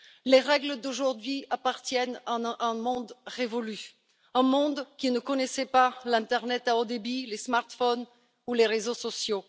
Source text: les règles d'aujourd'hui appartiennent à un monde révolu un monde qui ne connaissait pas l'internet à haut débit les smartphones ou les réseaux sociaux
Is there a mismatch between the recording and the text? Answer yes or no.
no